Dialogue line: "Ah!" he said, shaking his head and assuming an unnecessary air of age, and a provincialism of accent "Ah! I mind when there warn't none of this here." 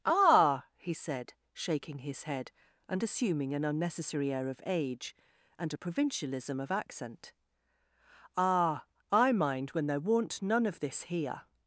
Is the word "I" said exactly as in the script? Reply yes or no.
yes